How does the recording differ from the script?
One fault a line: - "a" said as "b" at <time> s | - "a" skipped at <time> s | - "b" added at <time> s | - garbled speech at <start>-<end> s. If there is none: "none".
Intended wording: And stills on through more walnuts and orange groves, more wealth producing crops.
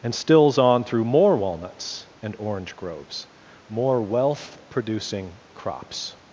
none